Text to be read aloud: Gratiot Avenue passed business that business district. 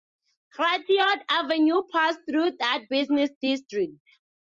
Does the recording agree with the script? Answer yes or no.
no